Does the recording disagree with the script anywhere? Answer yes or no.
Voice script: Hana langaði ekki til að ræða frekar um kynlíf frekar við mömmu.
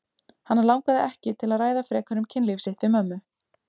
yes